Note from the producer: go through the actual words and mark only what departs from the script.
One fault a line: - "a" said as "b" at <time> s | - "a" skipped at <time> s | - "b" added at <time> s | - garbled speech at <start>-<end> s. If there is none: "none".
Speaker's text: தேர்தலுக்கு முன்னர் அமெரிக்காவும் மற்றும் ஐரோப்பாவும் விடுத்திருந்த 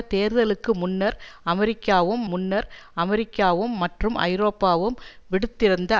- "முன்னர் அமெரிக்காவும்" added at 2.2 s